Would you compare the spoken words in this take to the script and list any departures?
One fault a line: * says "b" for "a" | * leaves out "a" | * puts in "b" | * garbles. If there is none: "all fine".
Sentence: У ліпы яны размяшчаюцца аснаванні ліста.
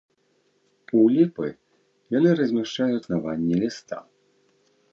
all fine